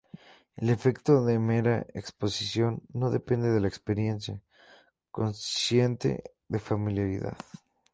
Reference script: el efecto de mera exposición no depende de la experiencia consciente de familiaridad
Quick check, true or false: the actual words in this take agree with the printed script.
true